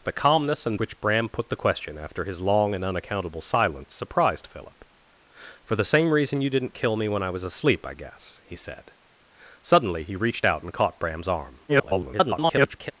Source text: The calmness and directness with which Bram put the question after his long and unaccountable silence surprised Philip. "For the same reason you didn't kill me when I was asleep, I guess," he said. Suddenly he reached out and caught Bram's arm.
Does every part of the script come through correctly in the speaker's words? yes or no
no